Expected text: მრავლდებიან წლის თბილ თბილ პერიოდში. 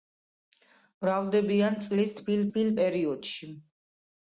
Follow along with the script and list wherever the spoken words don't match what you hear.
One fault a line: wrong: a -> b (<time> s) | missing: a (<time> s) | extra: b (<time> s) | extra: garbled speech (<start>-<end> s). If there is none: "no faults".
no faults